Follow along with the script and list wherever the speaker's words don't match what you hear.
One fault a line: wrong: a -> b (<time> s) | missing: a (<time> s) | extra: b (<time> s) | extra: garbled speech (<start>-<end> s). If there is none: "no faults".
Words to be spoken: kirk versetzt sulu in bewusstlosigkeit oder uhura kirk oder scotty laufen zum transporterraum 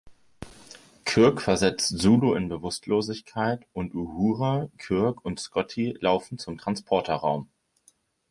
wrong: oder -> und (3.7 s)
wrong: oder -> und (5.2 s)